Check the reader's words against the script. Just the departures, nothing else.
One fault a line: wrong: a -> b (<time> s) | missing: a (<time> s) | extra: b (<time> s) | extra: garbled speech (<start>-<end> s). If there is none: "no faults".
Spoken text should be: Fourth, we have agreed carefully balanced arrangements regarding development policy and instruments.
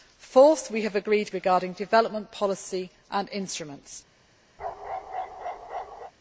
missing: carefully balanced arrangements (1.3 s)